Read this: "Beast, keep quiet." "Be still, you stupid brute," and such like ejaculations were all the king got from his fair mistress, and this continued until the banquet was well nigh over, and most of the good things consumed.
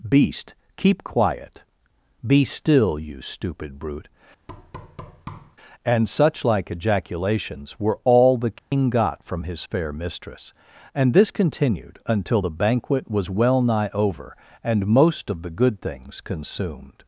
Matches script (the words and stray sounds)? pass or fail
fail